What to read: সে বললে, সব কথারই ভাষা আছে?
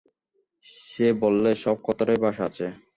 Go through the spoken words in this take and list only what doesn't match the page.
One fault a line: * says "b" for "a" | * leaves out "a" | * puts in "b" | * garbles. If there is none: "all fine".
all fine